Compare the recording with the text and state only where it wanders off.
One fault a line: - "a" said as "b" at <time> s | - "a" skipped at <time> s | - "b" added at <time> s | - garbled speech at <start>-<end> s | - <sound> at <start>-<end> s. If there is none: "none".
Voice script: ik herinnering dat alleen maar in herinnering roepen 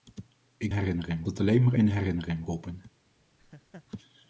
- laugh at 3.4-3.9 s